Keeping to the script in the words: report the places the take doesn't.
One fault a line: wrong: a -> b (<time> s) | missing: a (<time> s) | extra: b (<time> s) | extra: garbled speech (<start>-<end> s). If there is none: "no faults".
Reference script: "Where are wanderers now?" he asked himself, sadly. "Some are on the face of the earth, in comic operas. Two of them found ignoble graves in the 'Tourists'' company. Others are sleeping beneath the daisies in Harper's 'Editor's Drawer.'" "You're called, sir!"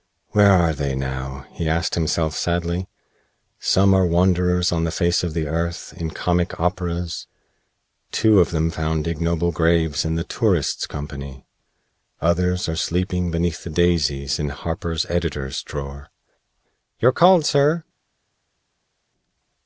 wrong: wanderers -> they (0.7 s)
extra: wanderers (4.1 s)